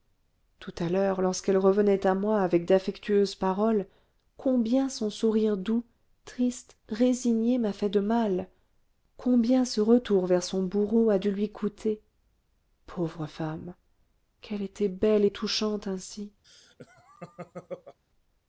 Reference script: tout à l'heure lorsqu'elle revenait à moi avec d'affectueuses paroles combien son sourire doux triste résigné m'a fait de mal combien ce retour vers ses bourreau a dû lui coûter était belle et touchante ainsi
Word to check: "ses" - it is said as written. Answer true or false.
false